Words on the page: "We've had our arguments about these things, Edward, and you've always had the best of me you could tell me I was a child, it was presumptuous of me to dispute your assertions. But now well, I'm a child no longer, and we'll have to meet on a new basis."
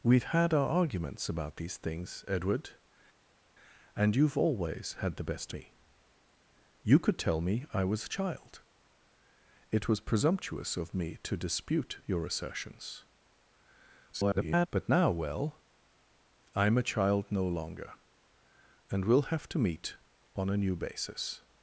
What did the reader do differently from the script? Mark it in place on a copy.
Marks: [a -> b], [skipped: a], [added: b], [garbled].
"We've had our arguments about these things, Edward, and you've always had the best [skipped: of] me you could tell me I was a child, it was presumptuous of me to dispute your assertions. [garbled] But now well, I'm a child no longer, and we'll have to meet on a new basis."